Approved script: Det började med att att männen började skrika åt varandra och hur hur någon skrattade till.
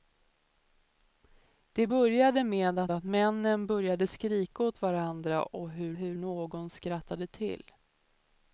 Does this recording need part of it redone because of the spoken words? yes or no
no